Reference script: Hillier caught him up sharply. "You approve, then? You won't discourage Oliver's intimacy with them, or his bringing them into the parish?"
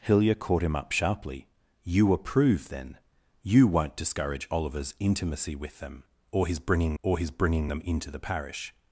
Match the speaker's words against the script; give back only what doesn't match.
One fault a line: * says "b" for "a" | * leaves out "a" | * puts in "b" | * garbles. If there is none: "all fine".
* puts in "or his bringing"